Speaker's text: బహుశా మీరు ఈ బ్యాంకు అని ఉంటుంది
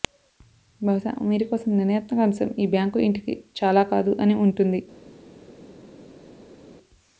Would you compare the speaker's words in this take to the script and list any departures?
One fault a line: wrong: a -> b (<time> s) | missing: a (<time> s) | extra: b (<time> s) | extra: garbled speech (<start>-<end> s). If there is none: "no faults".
extra: కోసం నిర్ణయాత్మక అంశం (1.5 s)
extra: ఇంటికి చాలా కాదు (3.0 s)